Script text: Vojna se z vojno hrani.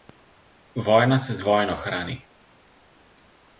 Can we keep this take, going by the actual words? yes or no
yes